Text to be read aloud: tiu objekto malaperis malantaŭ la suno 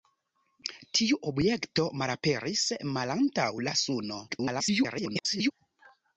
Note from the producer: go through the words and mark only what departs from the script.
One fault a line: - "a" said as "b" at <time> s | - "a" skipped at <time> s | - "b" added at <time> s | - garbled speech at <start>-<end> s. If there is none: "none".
- garbled speech at 4.3-5.5 s